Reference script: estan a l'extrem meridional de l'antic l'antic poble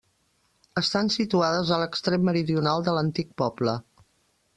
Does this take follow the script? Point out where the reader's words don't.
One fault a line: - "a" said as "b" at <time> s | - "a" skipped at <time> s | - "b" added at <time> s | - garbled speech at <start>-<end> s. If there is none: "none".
- "situades" added at 1.1 s
- "l'antic" skipped at 3.3 s